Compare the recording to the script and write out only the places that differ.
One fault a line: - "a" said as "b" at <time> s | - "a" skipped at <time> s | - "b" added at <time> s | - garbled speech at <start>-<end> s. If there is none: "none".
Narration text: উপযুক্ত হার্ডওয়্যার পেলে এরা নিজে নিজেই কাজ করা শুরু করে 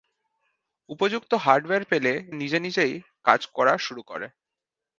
- "এরা" skipped at 2.1 s